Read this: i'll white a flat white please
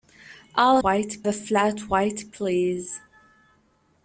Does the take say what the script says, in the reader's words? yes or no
yes